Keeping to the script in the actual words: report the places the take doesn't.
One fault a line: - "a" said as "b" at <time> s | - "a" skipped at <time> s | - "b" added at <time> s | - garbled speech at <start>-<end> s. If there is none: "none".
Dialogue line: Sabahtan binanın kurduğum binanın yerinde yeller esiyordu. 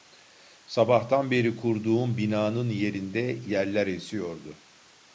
- "binanın" said as "beri" at 1.3 s